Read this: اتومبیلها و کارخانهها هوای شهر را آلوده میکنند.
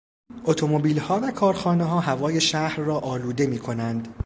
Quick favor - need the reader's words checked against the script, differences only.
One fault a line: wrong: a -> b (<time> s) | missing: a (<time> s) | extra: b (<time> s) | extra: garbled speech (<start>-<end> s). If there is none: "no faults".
no faults